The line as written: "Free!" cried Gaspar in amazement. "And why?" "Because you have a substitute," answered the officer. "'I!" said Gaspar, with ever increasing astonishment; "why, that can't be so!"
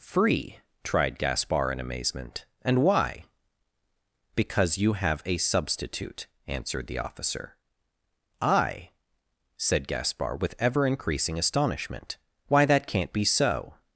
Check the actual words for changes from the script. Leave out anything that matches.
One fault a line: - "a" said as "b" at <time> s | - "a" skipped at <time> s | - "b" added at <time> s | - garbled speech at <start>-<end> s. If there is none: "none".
- "cried" said as "tried" at 0.8 s